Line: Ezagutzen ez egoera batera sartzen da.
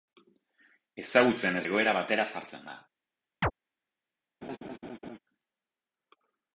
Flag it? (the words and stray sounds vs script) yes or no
yes